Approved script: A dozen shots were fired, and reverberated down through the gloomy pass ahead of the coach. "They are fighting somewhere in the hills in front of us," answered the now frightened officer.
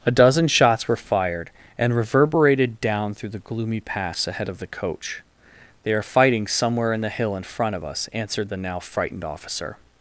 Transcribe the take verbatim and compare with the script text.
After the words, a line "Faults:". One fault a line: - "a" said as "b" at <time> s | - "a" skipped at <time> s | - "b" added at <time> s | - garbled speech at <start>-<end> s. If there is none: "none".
A dozen shots were fired, and reverberated down through the gloomy pass ahead of the coach. "They are fighting somewhere in the hill in front of us," answered the now frightened officer.
Faults:
- "hills" said as "hill" at 7.1 s